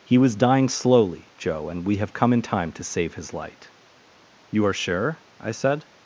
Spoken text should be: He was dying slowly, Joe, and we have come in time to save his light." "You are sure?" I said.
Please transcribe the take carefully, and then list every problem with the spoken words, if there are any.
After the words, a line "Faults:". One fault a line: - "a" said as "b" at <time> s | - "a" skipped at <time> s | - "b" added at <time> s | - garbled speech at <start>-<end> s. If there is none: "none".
He was dying slowly, Joe, and we have come in time to save his light." "You are sure?" I said.
Faults:
none